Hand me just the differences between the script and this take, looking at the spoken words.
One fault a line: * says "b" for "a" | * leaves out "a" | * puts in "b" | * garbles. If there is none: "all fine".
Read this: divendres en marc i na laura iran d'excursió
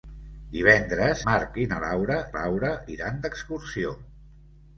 * leaves out "en"
* puts in "laura"